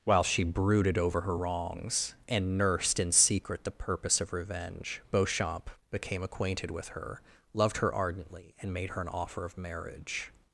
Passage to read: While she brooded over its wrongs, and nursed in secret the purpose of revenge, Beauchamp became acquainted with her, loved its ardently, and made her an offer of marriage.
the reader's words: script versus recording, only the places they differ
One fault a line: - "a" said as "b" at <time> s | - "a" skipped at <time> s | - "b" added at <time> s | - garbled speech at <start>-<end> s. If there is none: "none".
- "its" said as "her" at 1.2 s
- "its" said as "her" at 7.8 s